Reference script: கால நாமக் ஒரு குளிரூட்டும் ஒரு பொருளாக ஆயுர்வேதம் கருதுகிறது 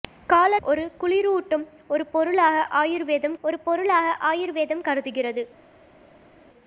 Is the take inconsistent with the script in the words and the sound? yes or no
yes